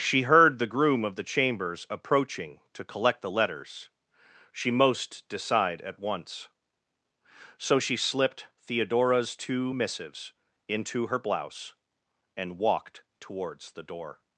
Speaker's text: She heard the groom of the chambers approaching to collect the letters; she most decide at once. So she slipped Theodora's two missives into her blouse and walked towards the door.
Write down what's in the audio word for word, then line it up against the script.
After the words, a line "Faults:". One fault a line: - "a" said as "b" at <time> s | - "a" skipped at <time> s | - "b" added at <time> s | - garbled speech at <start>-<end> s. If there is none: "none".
She heard the groom of the chambers approaching to collect the letters; she most decide at once. So she slipped Theodora's two missives into her blouse and walked towards the door.
Faults:
none